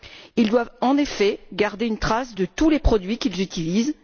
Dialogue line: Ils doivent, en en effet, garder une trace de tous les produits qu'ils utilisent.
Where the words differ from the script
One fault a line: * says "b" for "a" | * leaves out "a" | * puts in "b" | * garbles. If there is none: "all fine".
* leaves out "en"